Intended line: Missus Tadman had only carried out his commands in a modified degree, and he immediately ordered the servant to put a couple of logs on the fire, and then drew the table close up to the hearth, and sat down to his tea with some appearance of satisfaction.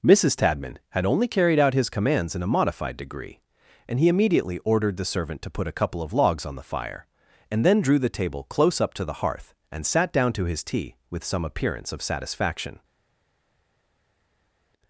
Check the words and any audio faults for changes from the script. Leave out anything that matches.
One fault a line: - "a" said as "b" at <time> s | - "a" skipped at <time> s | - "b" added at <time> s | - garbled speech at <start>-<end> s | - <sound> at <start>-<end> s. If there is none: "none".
none